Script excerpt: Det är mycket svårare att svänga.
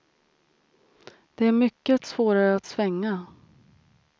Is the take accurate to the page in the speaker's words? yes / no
yes